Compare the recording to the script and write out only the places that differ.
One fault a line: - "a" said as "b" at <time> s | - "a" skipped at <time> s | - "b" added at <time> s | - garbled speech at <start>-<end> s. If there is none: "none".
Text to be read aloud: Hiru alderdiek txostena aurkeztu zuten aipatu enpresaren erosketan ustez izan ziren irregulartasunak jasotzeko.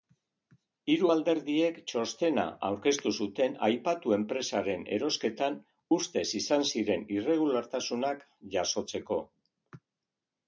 none